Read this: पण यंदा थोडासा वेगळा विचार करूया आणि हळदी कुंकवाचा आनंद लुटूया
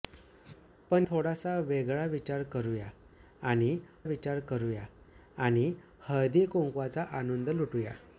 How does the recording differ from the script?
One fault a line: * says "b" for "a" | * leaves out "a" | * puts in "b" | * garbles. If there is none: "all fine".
* leaves out "यंदा"
* puts in "विचार करूया आणि"